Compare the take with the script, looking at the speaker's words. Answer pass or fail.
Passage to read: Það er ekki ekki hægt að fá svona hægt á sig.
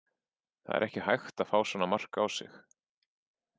fail